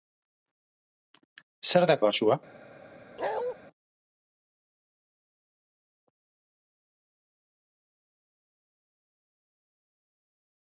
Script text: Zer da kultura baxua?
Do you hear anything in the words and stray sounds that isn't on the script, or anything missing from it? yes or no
yes